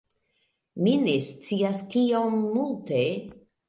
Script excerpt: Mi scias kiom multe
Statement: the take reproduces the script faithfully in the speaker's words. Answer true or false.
false